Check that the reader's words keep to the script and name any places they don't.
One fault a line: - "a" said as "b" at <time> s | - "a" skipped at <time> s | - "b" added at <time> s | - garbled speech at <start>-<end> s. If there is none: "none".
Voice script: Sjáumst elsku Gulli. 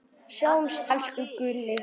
none